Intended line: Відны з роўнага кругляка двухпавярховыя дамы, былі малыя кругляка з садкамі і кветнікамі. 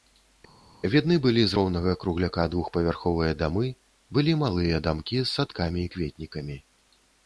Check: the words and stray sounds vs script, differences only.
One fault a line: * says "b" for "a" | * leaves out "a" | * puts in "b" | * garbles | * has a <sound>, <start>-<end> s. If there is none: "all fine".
* puts in "былі"
* says "дамкі" for "кругляка"